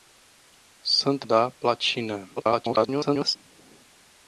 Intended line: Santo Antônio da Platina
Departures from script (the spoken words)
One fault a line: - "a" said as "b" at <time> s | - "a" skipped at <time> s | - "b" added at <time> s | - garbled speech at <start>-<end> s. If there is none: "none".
- "Antônio" skipped at 1.3 s
- garbled speech at 2.4-3.4 s